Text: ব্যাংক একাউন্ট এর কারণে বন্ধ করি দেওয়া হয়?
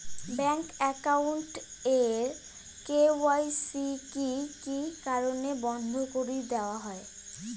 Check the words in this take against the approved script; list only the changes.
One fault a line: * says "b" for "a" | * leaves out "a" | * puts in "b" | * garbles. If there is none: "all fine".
* puts in "কে.ওয়াই.সি কি কি"